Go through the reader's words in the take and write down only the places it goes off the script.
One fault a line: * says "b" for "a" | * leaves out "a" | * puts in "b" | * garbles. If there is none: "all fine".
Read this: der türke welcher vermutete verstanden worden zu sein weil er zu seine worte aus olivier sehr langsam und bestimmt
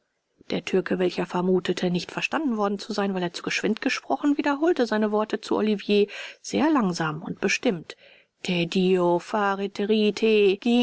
* puts in "nicht"
* puts in "geschwind gesprochen wiederholte"
* says "zu" for "aus"